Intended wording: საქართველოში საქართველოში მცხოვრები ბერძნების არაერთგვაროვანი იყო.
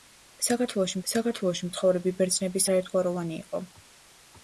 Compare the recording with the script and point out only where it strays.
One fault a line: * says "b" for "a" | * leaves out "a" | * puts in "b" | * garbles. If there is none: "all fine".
all fine